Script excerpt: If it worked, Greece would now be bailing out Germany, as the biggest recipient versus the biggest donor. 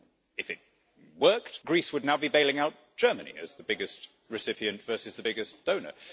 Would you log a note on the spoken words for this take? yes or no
no